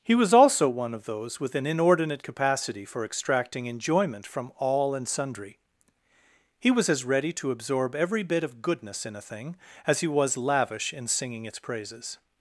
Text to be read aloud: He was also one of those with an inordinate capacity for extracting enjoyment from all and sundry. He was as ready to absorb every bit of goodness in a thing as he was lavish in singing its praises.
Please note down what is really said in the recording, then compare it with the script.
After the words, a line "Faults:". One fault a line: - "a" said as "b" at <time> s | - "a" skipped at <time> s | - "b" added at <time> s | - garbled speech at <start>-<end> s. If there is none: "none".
He was also one of those with an inordinate capacity for extracting enjoyment from all and sundry. He was as ready to absorb every bit of goodness in a thing as he was lavish in singing its praises.
Faults:
none